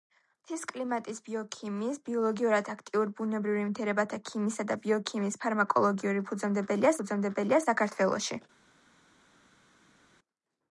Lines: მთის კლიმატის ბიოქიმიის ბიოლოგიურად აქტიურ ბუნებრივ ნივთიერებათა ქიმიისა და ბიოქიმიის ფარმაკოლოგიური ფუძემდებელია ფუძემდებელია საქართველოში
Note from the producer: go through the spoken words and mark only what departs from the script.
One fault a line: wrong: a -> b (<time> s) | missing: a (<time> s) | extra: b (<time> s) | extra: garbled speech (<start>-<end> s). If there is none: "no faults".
no faults